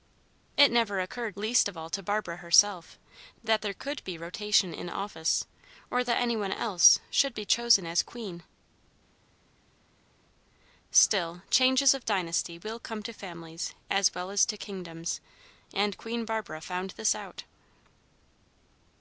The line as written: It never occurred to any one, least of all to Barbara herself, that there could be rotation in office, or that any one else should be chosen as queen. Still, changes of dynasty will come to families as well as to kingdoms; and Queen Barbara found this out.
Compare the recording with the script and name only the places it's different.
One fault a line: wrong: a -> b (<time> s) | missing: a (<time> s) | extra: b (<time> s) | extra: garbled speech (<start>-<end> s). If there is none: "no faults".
missing: to any one (1.4 s)